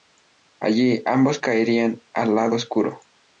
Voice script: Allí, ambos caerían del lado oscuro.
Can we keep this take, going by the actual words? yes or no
no